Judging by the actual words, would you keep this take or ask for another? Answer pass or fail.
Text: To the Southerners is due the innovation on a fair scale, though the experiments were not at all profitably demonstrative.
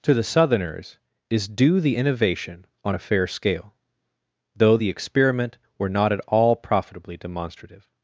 fail